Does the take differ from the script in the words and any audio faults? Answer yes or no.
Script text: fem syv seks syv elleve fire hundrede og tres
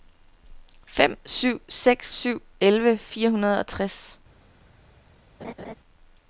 yes